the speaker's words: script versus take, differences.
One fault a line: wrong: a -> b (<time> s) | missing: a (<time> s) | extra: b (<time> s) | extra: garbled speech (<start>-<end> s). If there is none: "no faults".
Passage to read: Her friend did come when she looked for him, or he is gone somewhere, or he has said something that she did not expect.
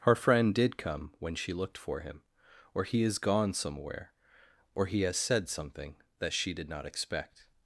no faults